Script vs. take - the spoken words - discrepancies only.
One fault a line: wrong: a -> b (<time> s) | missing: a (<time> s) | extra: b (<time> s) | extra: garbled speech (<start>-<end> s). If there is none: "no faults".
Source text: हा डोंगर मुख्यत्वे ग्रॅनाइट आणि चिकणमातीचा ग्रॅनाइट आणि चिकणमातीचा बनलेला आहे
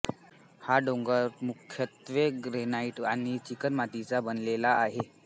missing: ग्रॅनाइट आणि चिकणमातीचा (4.2 s)